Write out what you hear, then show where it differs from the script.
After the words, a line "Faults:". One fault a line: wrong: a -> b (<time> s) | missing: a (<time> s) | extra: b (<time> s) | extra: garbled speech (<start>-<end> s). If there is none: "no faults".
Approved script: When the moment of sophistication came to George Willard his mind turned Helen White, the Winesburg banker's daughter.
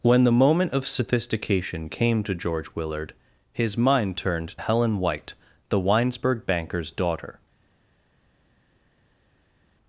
When the moment of sophistication came to George Willard his mind turned Helen White, the Winesburg banker's daughter.
Faults:
no faults